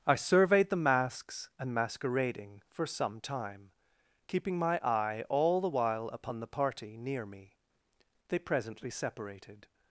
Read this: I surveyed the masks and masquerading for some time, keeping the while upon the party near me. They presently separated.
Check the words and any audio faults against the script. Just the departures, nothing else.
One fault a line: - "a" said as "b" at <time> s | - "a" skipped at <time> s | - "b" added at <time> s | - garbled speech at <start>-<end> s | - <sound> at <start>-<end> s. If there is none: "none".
- "my eye all" added at 4.6 s